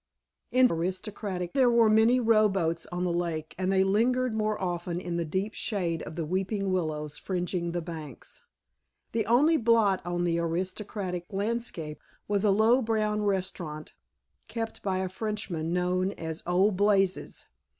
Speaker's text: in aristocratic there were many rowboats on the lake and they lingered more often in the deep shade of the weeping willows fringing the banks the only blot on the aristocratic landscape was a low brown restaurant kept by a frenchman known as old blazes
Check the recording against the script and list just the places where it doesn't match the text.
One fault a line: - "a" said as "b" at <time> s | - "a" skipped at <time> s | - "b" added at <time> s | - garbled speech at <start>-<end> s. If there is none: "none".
none